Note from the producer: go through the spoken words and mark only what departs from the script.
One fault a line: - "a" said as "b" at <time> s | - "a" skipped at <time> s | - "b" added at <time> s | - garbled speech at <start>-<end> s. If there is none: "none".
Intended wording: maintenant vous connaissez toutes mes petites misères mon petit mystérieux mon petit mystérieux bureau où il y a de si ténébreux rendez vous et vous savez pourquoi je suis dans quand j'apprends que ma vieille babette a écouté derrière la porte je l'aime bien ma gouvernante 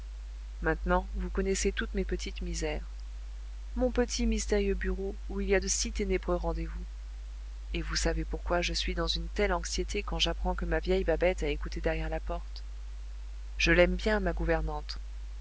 - "mon petit mystérieux" skipped at 4.7 s
- "une telle anxiété" added at 9.1 s